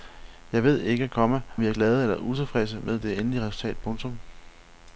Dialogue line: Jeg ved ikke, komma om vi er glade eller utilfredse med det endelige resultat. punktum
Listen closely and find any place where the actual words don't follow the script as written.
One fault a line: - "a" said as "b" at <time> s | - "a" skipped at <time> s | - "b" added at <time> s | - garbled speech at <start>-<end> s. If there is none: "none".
- "om" skipped at 1.4 s